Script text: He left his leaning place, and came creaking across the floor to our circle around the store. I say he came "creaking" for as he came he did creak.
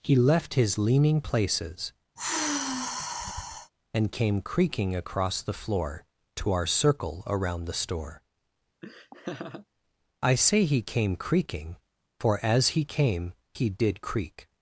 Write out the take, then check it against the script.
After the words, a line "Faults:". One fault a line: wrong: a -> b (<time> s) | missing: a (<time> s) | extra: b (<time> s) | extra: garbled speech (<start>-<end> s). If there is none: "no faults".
He left his leaning places, and came creaking across the floor to our circle around the store. I say he came "creaking" for as he came he did creak.
Faults:
wrong: place -> places (1.2 s)